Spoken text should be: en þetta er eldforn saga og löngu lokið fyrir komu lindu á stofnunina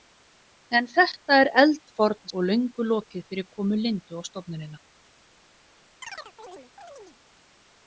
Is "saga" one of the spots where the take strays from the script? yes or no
yes